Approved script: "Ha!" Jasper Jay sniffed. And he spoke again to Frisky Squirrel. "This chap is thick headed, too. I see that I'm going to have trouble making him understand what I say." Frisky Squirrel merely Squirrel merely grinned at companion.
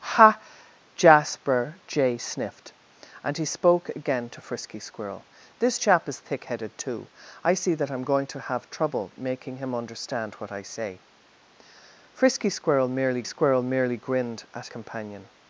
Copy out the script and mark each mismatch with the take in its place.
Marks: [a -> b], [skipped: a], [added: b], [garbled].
"Ha!" Jasper Jay sniffed. And he spoke again to Frisky Squirrel. "This chap is thick headed, too. I see that I'm going to have trouble making him understand what I say." Frisky Squirrel merely Squirrel merely grinned at companion.